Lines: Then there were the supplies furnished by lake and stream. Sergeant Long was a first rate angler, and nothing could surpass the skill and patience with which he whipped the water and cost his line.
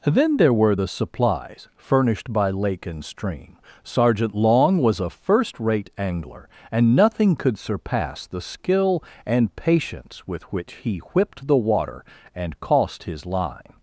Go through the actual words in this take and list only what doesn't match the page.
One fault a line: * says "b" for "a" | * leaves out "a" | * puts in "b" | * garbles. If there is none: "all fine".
all fine